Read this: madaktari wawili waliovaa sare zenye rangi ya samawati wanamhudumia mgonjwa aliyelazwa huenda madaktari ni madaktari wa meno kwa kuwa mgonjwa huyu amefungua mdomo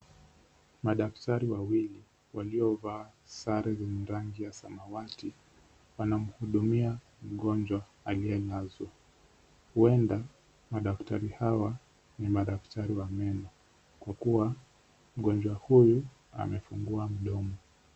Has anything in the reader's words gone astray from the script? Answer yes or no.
yes